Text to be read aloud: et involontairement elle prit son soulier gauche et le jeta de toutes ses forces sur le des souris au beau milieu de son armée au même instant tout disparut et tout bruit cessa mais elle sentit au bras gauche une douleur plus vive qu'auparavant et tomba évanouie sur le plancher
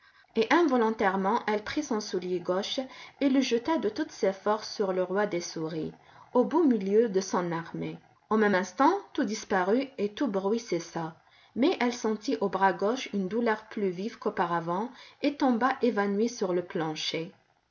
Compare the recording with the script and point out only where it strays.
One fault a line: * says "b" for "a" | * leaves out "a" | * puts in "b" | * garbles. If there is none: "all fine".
* puts in "roi"